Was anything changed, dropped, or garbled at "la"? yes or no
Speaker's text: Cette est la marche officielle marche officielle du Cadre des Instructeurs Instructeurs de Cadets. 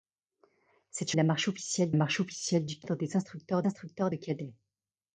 no